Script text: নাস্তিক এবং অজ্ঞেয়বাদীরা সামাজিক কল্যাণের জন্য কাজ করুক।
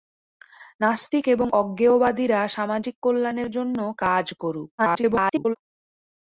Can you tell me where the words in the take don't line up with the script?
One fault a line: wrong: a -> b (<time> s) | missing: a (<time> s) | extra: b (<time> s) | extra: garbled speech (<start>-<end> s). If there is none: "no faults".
extra: garbled speech (4.8-5.6 s)